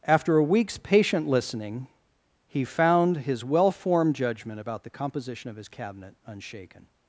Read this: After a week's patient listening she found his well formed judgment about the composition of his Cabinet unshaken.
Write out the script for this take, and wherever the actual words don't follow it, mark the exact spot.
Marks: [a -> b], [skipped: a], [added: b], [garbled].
After a week's patient listening [she -> he] found his well formed judgment about the composition of his Cabinet unshaken.